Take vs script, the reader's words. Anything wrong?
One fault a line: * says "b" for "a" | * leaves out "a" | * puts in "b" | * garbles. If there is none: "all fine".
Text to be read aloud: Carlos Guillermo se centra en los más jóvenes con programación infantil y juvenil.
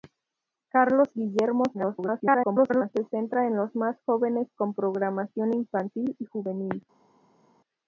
* garbles